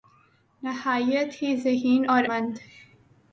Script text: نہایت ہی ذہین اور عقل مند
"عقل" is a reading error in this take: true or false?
true